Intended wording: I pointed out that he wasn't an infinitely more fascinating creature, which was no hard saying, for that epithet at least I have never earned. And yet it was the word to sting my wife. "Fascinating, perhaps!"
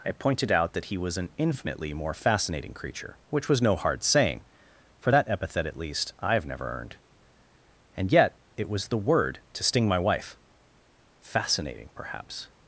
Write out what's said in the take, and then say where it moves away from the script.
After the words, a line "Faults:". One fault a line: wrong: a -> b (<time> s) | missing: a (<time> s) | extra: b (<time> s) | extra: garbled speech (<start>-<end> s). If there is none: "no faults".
I pointed out that he was an infinitely more fascinating creature, which was no hard saying, for that epithet at least I have never earned. And yet it was the word to sting my wife. "Fascinating, perhaps!"
Faults:
wrong: wasn't -> was (1.0 s)